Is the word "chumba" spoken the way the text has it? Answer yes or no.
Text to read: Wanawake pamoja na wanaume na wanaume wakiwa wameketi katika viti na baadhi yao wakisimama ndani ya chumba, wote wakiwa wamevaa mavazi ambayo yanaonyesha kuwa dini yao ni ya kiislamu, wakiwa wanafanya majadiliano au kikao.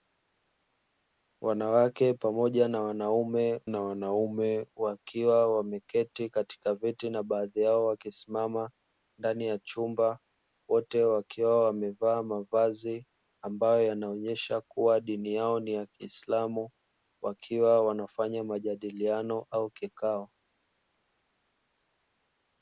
yes